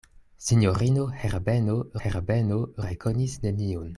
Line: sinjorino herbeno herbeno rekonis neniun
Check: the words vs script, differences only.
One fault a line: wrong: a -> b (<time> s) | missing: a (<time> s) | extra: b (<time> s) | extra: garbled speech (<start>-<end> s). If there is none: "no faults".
no faults